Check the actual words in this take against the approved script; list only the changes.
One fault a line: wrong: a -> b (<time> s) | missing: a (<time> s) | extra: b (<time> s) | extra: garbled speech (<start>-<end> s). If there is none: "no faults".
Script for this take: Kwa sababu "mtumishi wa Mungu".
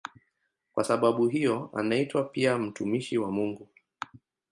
extra: hiyo anaitwa pia (1.3 s)